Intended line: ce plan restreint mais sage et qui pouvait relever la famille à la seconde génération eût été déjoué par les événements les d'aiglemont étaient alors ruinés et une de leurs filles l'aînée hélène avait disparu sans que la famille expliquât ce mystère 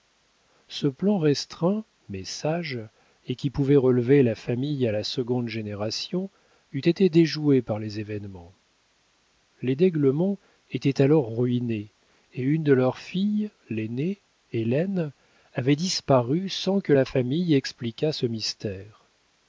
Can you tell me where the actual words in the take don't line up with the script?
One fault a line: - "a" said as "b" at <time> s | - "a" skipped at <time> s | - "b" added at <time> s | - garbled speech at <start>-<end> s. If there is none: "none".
none